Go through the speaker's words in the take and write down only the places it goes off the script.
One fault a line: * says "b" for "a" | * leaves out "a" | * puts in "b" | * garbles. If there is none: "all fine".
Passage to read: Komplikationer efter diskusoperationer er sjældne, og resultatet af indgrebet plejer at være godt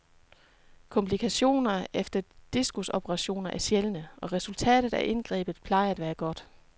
all fine